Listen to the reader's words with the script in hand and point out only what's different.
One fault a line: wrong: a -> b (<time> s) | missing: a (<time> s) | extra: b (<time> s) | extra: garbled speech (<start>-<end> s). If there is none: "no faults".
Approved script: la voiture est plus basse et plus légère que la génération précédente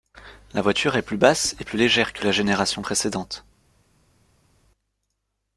no faults